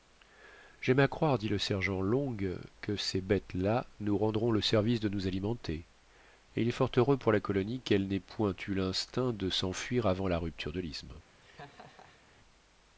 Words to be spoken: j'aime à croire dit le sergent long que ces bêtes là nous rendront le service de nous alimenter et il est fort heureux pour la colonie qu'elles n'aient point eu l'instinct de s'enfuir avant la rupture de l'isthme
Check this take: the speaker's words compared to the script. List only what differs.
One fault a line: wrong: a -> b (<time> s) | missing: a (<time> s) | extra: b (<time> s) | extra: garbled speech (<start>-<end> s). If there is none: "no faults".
no faults